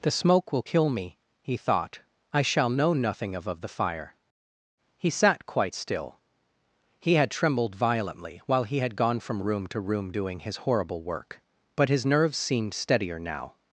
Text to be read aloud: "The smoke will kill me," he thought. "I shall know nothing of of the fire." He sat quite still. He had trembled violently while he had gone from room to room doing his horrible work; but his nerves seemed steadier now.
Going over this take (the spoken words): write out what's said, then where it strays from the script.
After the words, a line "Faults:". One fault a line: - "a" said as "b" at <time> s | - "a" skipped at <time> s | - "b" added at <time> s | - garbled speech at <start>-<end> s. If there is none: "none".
"The smoke will kill me," he thought. "I shall know nothing of of the fire." He sat quite still. He had trembled violently while he had gone from room to room doing his horrible work; but his nerves seemed steadier now.
Faults:
none